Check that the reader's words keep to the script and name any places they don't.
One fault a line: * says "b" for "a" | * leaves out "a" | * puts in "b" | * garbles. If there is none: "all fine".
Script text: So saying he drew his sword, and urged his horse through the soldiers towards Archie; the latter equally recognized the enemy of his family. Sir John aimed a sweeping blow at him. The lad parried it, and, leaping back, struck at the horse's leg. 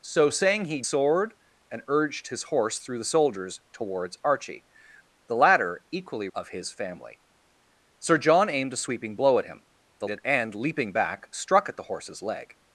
* leaves out "drew his"
* leaves out "recognized the enemy"
* leaves out "lad parried"